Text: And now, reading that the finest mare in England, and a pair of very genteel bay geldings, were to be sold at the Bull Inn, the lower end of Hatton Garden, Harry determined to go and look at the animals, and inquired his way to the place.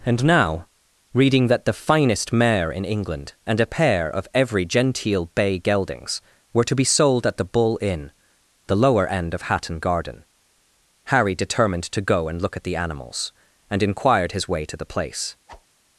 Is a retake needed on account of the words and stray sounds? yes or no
yes